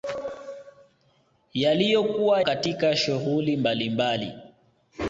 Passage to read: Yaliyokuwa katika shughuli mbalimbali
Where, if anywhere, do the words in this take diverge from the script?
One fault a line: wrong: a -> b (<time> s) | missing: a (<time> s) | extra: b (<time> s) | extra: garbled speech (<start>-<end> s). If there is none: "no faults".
no faults